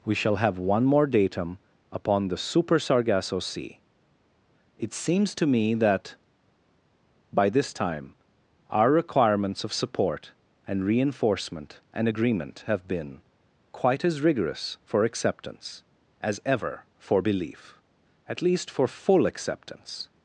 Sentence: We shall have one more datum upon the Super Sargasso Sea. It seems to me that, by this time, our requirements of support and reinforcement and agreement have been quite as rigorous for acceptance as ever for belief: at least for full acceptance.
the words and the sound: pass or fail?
pass